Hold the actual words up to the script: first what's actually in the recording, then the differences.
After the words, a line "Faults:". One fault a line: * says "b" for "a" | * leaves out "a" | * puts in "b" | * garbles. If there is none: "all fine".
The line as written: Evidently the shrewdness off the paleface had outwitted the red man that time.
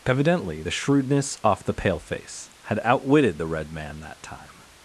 Evidently the shrewdness off the paleface had outwitted the red man that time.
Faults:
all fine